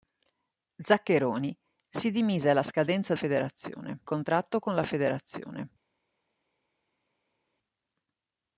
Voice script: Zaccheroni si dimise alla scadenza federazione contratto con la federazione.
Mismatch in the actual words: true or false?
false